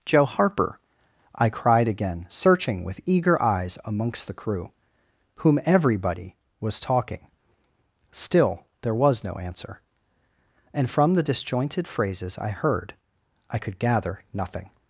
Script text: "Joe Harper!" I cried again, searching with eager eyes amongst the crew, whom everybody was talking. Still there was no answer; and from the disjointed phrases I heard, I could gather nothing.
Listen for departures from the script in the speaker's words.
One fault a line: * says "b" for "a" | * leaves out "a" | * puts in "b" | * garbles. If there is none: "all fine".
all fine